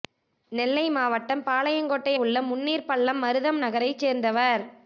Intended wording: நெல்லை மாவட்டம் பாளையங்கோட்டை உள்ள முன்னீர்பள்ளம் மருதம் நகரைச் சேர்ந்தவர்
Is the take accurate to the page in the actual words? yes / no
yes